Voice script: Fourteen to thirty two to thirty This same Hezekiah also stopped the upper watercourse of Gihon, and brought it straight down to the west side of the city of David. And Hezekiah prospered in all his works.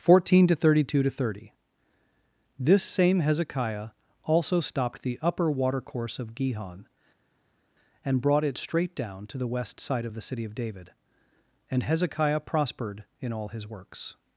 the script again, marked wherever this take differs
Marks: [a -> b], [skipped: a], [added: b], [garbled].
Fourteen to thirty two to thirty This same Hezekiah also stopped the upper watercourse of Gihon, and brought it straight down to the west side of the city of David. And Hezekiah prospered in all his works.